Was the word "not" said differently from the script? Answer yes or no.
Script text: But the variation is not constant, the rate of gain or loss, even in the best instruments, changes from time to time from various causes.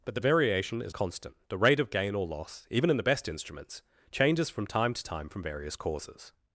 yes